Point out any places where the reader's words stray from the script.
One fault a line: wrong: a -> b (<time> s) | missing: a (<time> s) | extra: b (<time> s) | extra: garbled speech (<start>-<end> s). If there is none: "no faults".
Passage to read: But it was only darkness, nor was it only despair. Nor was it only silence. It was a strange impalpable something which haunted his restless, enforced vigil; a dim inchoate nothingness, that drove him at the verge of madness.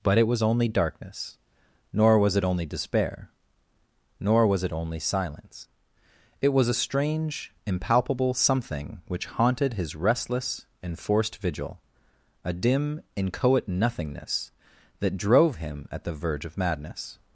no faults